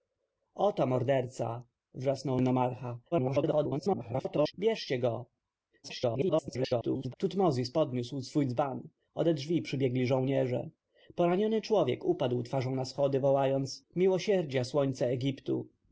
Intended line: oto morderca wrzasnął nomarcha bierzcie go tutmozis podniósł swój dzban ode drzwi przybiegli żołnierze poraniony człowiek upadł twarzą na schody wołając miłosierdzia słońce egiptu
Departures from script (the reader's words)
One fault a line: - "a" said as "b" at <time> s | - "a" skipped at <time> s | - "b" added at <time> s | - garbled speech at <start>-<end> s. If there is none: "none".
- garbled speech at 3.1-4.5 s
- garbled speech at 5.8-7.1 s